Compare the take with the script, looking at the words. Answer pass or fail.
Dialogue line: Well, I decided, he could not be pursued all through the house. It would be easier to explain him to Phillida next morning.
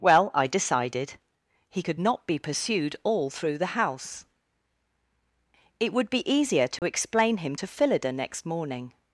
pass